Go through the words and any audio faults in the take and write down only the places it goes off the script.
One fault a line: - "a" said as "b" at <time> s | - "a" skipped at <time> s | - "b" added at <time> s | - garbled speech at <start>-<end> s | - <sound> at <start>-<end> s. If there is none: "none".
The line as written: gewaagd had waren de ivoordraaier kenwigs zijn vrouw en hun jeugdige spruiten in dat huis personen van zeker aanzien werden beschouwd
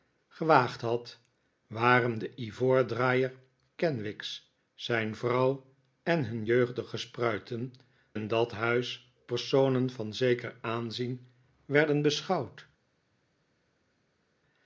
none